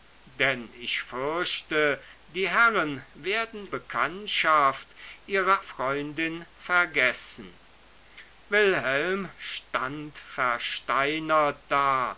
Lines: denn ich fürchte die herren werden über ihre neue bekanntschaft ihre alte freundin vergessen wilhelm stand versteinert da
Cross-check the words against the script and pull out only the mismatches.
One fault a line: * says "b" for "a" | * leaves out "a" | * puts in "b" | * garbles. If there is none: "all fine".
* leaves out "über ihre neue"
* leaves out "alte"